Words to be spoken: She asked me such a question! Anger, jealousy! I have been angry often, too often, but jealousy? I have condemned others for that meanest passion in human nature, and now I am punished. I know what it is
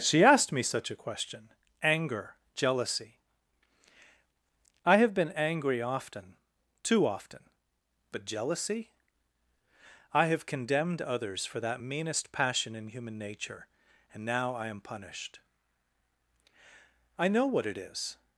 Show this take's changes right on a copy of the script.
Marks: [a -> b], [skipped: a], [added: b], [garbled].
She asked me such a question! Anger, jealousy! I have been angry often, too often, but jealousy? I have condemned others for that meanest passion in human nature, and now I am punished. I know what it is